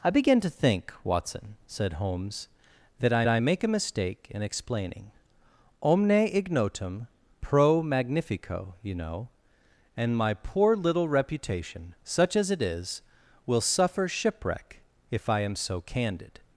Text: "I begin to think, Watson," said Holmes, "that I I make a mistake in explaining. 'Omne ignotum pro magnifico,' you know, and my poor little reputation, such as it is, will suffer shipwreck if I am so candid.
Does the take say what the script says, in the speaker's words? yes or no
yes